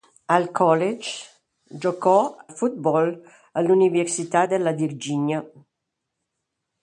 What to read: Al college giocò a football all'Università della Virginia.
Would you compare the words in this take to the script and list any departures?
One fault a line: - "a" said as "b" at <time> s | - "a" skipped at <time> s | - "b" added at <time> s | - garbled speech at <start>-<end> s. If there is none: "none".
- "a" skipped at 2.4 s